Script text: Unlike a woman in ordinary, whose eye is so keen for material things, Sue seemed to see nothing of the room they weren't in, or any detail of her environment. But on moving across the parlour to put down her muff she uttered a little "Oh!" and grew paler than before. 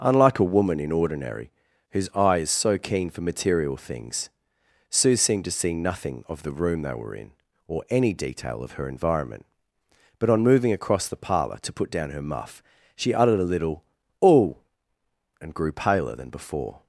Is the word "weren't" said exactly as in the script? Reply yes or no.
no